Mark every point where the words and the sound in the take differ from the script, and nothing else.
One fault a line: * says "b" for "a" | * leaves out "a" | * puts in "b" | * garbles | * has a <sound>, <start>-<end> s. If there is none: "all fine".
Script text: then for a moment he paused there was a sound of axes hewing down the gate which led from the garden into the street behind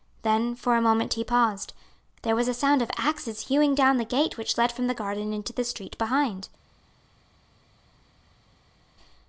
all fine